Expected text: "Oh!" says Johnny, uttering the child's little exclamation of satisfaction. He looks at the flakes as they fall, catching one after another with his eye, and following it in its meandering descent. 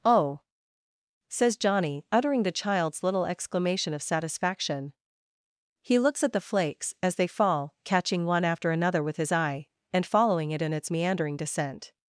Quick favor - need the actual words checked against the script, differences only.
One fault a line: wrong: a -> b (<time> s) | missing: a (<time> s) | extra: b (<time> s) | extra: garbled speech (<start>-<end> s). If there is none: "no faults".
no faults